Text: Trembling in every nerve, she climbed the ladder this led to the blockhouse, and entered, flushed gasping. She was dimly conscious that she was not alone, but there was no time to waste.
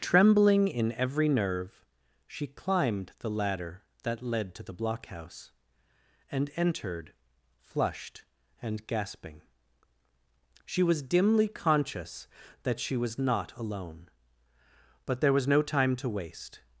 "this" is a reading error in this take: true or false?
true